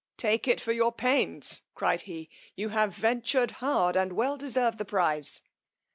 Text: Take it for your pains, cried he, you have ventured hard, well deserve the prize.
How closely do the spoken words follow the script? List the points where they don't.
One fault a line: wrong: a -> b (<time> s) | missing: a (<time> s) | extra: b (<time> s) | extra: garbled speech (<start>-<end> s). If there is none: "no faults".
extra: and (4.0 s)